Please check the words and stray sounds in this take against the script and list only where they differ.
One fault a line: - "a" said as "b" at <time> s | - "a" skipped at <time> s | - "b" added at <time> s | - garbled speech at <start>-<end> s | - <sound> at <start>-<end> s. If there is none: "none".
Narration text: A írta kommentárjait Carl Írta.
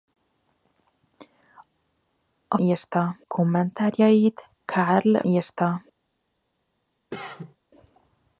- cough at 7.1-7.6 s